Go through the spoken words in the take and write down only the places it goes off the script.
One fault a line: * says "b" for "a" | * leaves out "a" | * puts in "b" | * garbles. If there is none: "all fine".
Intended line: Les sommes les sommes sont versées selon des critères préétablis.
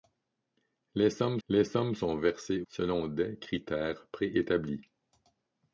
all fine